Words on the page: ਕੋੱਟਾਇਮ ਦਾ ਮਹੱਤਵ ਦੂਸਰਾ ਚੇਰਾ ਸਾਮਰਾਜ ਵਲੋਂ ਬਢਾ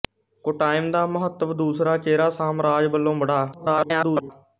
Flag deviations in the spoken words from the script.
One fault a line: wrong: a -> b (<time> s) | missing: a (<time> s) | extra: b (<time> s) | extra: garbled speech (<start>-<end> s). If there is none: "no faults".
extra: garbled speech (3.5-4.3 s)